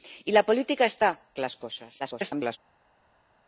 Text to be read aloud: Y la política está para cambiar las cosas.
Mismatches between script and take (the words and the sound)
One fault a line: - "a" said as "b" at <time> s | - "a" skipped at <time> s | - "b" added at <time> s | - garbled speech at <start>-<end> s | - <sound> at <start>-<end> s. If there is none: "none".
- "para cambiar" skipped at 1.1 s
- garbled speech at 2.0-2.6 s